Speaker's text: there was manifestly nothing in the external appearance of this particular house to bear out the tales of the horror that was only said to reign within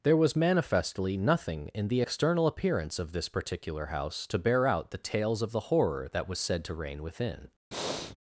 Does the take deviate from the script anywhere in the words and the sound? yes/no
yes